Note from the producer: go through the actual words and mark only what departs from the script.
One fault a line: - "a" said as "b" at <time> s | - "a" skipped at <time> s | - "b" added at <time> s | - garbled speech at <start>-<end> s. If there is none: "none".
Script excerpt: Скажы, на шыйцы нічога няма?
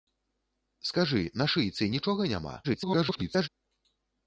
- garbled speech at 2.6-3.5 s